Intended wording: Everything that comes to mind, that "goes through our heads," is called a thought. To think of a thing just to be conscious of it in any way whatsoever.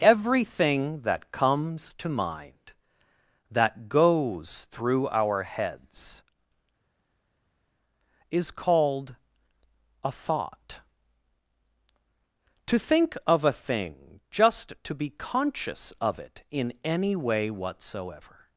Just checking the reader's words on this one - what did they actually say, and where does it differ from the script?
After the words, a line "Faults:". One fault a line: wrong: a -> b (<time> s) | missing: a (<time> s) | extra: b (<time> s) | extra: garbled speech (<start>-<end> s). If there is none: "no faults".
Everything that comes to mind, that "goes through our heads," is called a thought. To think of a thing just to be conscious of it in any way whatsoever.
Faults:
no faults